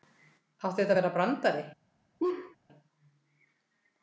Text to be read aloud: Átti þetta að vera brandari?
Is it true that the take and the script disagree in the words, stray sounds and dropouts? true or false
true